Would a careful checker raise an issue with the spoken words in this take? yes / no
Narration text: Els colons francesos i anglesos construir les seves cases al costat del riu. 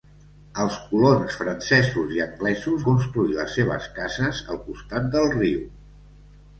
no